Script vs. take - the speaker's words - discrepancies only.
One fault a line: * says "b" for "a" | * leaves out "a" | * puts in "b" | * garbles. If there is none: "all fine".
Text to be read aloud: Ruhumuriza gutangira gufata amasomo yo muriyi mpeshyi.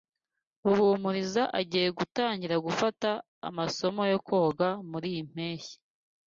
* puts in "agiye"
* puts in "koga"